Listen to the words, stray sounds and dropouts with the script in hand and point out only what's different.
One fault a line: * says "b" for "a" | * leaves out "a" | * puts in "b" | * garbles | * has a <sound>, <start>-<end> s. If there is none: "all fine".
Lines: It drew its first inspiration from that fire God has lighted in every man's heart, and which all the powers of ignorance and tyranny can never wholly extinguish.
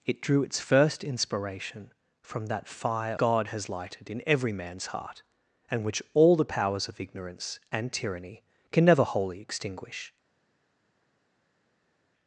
all fine